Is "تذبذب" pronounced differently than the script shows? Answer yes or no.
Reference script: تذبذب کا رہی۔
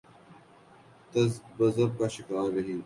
no